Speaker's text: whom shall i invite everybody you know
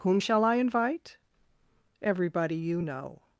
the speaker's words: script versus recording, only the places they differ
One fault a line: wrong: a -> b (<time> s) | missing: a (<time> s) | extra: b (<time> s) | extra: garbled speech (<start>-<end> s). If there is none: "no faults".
no faults